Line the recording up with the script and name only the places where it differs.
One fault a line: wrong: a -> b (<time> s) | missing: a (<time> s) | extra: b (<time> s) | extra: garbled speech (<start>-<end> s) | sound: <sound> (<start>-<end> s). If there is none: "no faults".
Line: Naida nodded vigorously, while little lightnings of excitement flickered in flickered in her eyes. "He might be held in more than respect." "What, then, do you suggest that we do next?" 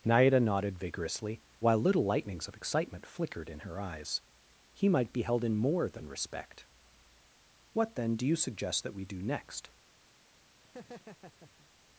missing: flickered in (3.6 s)
sound: laugh (10.6-11.7 s)